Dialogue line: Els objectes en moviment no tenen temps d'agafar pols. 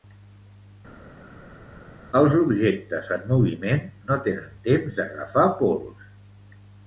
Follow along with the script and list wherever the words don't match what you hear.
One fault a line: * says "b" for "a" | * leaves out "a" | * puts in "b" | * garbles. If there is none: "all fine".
all fine